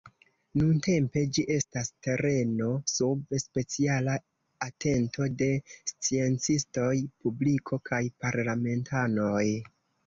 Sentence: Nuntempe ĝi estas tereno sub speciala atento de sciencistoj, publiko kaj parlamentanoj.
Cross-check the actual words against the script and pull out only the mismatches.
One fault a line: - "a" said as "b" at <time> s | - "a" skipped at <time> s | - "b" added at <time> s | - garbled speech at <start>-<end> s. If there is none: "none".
none